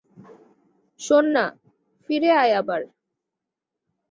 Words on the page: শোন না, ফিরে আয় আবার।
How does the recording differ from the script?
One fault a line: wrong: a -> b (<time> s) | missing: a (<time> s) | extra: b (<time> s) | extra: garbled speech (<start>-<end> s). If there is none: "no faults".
no faults